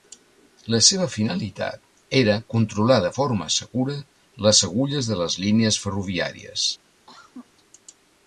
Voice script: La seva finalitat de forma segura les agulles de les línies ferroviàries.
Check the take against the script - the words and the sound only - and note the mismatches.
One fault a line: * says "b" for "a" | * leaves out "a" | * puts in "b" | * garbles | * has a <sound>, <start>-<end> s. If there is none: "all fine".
* puts in "era controlar"
* has a cough, 7.1-7.5 s